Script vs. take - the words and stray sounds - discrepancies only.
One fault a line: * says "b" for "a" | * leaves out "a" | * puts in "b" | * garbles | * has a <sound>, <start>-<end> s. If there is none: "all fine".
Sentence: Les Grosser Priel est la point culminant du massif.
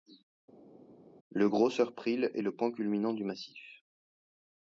* says "Le" for "Les"
* says "le" for "la"